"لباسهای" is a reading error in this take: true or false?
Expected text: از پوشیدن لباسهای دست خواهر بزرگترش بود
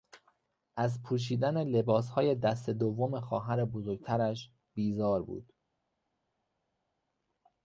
false